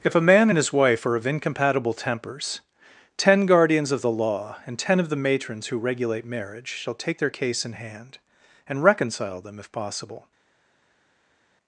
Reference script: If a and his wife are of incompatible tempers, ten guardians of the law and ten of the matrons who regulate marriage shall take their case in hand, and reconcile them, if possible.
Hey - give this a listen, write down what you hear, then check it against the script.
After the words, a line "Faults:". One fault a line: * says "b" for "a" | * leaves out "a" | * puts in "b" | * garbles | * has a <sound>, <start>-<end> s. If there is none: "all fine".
If a man and his wife are of incompatible tempers, ten guardians of the law and ten of the matrons who regulate marriage shall take their case in hand, and reconcile them, if possible.
Faults:
* puts in "man"